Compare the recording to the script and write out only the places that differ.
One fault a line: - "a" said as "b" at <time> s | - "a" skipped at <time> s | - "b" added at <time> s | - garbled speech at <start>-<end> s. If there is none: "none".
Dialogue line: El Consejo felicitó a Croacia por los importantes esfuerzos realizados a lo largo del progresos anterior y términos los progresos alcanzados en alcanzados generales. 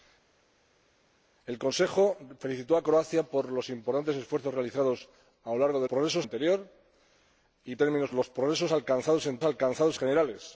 none